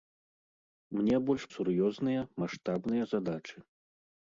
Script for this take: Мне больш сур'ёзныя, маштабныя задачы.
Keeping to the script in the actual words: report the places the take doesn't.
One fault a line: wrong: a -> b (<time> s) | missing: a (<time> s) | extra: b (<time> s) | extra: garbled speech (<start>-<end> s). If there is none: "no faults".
no faults